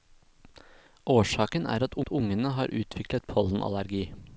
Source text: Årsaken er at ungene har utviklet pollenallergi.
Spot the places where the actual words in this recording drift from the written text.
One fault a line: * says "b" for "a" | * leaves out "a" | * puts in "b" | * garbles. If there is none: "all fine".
* puts in "at"